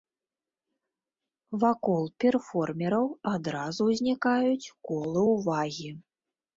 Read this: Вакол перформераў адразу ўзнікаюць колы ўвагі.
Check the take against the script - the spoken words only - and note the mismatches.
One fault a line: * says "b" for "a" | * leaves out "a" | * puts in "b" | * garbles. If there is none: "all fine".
all fine